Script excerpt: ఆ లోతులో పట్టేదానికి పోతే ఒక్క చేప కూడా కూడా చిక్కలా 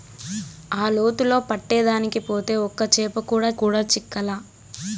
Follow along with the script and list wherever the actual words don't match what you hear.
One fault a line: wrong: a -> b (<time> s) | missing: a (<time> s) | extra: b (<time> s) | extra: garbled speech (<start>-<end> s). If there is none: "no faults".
no faults